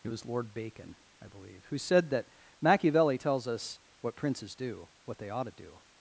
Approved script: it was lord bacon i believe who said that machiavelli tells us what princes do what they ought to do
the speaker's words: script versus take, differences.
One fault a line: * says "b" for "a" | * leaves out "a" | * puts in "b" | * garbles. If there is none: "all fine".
all fine